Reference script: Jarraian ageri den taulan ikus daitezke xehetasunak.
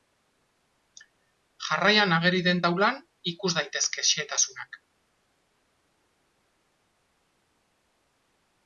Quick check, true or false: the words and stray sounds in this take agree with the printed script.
true